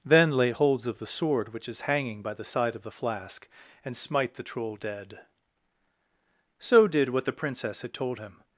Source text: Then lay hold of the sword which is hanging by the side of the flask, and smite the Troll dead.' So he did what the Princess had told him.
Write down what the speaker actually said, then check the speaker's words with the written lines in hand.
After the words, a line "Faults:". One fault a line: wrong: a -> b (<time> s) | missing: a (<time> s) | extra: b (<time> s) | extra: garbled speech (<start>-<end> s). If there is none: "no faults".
Then lay holds of the sword which is hanging by the side of the flask, and smite the Troll dead.' So did what the Princess had told him.
Faults:
wrong: hold -> holds (0.5 s)
missing: he (6.9 s)